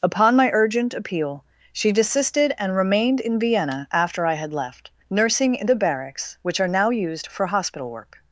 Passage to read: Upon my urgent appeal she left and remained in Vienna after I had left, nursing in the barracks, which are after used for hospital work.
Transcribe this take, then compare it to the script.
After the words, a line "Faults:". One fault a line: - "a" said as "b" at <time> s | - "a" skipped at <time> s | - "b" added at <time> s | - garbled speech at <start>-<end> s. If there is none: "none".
Upon my urgent appeal she desisted and remained in Vienna after I had left, nursing in the barracks, which are now used for hospital work.
Faults:
- "left" said as "desisted" at 1.9 s
- "after" said as "now" at 6.7 s